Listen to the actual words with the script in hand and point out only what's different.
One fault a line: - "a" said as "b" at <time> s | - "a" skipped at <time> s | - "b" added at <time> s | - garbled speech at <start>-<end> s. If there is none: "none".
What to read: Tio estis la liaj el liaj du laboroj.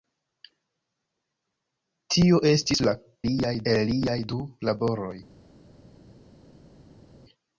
none